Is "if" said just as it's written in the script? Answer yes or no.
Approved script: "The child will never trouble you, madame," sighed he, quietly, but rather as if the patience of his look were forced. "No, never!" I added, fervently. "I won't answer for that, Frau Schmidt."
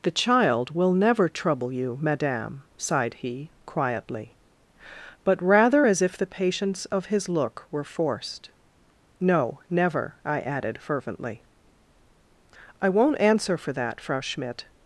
yes